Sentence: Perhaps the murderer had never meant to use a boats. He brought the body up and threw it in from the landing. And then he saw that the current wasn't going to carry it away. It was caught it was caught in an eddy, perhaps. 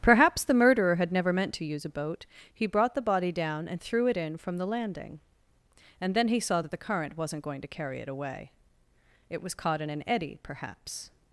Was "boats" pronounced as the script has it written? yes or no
no